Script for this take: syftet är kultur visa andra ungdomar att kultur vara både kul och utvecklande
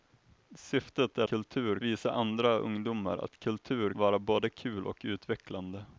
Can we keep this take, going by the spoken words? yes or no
yes